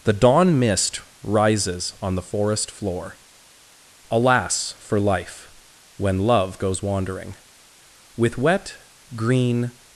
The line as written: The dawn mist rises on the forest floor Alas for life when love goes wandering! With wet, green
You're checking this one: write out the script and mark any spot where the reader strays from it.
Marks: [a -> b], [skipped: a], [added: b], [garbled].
The dawn mist rises on the forest floor Alas for life when love goes wandering! With wet, green